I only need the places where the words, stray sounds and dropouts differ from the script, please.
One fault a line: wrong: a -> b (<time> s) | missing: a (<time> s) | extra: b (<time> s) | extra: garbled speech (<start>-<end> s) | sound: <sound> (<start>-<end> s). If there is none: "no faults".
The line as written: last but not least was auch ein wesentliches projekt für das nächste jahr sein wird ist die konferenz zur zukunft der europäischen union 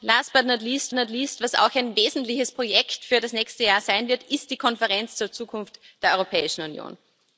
extra: not least (1.0 s)